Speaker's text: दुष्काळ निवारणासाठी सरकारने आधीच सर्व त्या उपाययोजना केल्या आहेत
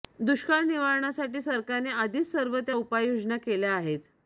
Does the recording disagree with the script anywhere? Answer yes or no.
no